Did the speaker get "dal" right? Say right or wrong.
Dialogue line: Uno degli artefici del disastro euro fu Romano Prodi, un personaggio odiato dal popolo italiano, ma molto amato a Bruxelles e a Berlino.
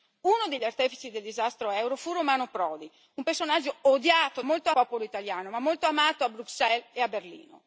wrong